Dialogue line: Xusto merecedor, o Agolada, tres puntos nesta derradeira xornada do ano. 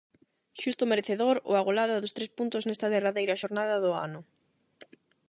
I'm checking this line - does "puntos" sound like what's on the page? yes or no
yes